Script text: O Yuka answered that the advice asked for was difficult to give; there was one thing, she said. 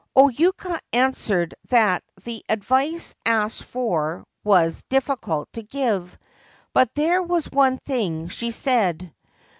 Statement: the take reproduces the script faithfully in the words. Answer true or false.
false